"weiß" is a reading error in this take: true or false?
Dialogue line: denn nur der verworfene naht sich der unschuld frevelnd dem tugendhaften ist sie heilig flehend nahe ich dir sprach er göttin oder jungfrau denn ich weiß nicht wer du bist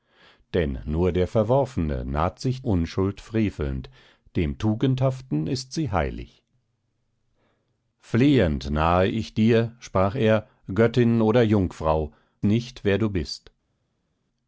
true